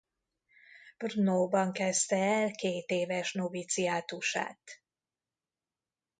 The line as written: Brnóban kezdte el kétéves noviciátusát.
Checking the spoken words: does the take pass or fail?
pass